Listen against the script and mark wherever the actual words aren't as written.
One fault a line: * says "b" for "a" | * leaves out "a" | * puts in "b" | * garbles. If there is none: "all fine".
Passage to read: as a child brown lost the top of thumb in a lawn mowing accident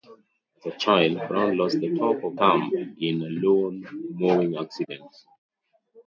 all fine